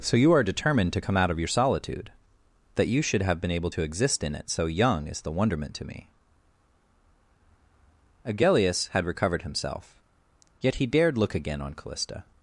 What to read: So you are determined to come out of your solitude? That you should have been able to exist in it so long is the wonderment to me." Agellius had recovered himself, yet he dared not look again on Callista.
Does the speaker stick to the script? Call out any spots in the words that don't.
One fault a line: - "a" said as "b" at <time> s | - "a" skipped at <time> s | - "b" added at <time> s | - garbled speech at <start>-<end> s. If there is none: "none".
- "long" said as "young" at 4.7 s
- "not" skipped at 11.2 s